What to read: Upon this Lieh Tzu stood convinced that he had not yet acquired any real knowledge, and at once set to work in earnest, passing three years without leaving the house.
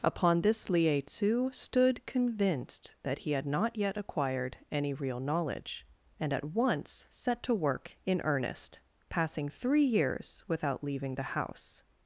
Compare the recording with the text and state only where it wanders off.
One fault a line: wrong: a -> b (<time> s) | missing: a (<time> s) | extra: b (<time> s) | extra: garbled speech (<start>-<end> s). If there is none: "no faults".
no faults